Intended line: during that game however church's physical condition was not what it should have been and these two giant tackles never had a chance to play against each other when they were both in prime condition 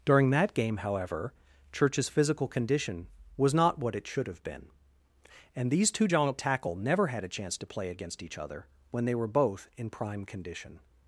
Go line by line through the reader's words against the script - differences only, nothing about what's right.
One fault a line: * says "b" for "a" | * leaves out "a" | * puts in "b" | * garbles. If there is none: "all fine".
* says "tackle" for "tackles"